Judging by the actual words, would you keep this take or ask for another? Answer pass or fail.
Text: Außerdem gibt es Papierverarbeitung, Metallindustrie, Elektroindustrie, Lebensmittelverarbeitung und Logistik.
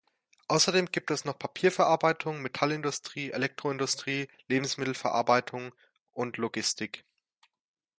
fail